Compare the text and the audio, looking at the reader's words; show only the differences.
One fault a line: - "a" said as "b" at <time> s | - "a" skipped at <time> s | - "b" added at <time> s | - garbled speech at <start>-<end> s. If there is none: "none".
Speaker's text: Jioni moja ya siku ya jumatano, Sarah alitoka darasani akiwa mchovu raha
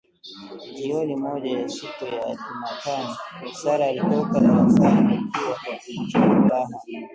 none